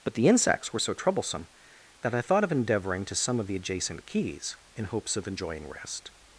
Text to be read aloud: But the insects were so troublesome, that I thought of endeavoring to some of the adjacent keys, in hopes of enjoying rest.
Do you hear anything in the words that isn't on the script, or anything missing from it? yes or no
no